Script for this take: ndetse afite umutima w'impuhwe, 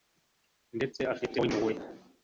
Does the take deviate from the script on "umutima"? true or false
true